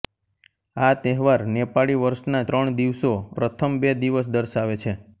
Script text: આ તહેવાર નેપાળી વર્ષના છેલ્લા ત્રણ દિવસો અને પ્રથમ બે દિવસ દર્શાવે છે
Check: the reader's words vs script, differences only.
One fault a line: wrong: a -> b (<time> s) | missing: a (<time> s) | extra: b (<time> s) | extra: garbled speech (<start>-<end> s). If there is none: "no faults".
missing: છેલ્લા (2.4 s)
missing: અને (3.1 s)